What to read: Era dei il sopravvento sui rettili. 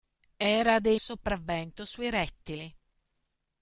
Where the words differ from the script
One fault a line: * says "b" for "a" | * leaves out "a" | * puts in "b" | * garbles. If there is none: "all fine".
all fine